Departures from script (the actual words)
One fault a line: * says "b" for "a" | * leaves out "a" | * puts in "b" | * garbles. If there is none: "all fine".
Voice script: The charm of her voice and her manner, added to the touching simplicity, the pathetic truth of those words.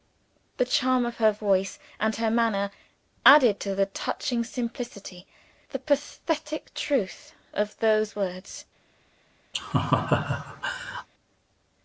all fine